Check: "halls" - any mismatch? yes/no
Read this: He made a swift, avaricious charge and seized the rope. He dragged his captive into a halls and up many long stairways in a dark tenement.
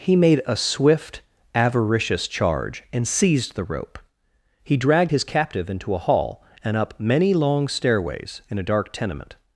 yes